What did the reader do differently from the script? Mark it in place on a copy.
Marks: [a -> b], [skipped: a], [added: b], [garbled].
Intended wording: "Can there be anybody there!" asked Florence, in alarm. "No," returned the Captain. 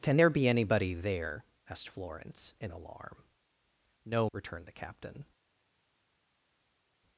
"Can there be anybody there!" asked Florence, in alarm. "No," returned the Captain.